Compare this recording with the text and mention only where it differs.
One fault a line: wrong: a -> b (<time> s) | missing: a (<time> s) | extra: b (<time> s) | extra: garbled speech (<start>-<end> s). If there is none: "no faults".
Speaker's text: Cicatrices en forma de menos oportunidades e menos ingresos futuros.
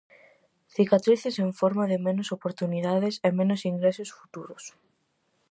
no faults